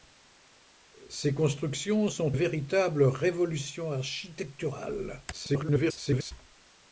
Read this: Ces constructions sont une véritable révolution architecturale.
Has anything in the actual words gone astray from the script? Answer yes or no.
yes